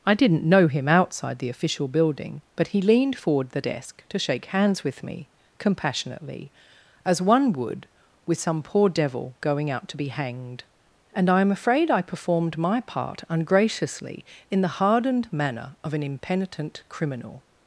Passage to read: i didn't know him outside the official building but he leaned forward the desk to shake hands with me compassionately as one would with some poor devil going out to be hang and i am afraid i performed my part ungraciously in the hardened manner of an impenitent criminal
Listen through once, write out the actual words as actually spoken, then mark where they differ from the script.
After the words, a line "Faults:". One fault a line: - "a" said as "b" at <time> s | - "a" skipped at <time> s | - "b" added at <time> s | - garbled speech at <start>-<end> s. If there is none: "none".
i didn't know him outside the official building but he leaned forward the desk to shake hands with me compassionately as one would with some poor devil going out to be hanged and i am afraid i performed my part ungraciously in the hardened manner of an impenitent criminal
Faults:
- "hang" said as "hanged" at 10.1 s